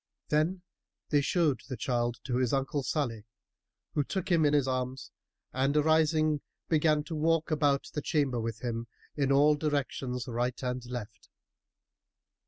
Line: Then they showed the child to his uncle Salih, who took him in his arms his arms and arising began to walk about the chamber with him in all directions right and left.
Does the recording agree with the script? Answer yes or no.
no